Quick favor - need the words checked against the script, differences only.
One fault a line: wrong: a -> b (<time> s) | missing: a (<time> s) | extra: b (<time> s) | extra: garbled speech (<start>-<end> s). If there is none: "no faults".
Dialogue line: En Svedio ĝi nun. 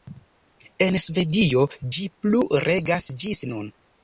extra: plu regas ĝis (2.2 s)